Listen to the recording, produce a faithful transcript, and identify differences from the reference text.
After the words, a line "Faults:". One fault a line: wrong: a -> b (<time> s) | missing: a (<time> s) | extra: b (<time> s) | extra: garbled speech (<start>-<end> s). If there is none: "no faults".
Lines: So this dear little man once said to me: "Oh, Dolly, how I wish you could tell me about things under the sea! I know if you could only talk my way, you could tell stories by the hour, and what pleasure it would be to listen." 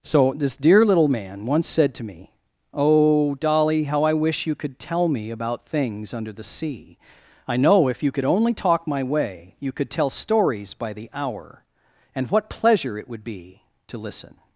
So this dear little man once said to me: "Oh, Dolly, how I wish you could tell me about things under the sea! I know if you could only talk my way, you could tell stories by the hour, and what pleasure it would be to listen."
Faults:
no faults